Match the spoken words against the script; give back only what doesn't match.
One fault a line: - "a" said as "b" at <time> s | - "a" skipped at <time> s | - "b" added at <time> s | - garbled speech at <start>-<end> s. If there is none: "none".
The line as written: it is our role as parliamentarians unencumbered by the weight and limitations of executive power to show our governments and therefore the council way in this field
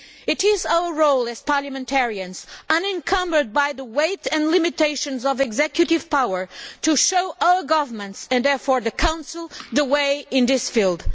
- "the" added at 9.7 s